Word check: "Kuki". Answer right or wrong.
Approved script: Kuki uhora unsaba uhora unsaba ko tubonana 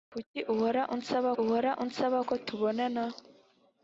right